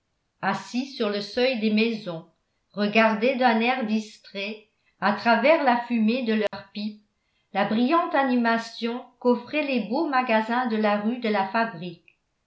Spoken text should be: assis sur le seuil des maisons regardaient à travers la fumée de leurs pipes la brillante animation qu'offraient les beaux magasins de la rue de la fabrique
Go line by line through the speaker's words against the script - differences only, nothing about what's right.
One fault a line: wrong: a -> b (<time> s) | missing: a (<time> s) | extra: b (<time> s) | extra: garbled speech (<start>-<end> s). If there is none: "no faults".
extra: d'un air distrait (3.4 s)